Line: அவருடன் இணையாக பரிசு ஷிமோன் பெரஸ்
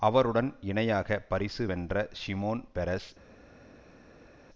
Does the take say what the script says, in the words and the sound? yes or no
no